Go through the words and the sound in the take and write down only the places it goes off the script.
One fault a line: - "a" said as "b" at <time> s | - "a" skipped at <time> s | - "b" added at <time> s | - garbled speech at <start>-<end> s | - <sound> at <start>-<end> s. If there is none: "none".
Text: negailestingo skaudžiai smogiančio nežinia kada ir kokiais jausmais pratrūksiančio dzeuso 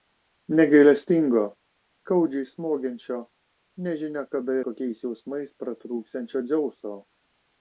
- "ir" skipped at 4.6 s